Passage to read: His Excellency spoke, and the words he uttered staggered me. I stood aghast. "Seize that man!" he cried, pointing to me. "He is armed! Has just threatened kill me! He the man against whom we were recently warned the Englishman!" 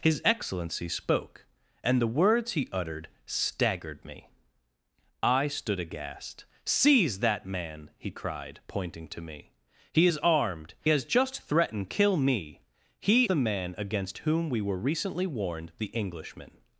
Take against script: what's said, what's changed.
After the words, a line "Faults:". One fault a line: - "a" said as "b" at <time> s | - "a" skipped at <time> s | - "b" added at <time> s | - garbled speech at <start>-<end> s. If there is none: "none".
His Excellency spoke, and the words he uttered staggered me. I stood aghast. "Seize that man!" he cried, pointing to me. "He is armed! Has just threatened kill me! He the man against whom we were recently warned the Englishman!"
Faults:
none